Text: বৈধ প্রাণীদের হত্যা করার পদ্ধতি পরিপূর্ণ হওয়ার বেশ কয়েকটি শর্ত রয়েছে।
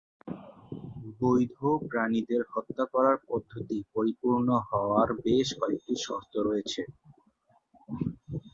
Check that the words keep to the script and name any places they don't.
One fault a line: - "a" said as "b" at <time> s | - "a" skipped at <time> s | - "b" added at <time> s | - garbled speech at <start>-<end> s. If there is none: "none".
none